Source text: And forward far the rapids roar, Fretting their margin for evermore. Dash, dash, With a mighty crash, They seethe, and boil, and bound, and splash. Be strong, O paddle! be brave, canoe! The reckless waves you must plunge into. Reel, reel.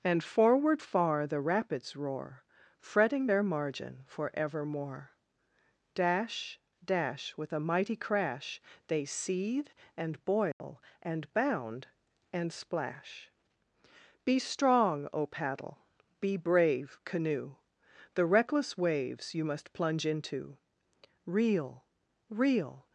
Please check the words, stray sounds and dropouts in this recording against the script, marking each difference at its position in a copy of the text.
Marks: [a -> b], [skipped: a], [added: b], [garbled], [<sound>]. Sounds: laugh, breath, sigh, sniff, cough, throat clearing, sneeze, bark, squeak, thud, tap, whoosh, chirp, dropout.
And forward far the rapids roar, Fretting their margin for evermore. Dash, dash, With a mighty crash, They seethe, and boil, [dropout] and bound, and splash. Be strong, O paddle! be brave, canoe! The reckless waves you must plunge into. Reel, reel.